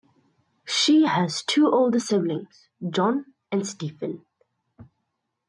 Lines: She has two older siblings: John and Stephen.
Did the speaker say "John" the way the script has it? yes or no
yes